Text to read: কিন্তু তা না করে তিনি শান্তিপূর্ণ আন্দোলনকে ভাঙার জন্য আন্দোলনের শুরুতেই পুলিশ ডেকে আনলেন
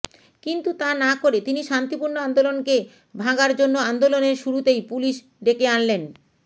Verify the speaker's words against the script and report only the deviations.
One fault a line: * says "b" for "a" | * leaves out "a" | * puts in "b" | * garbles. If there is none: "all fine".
all fine